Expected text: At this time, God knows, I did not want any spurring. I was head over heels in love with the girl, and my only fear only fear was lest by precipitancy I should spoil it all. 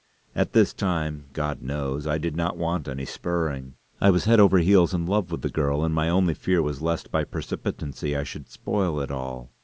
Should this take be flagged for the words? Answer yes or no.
yes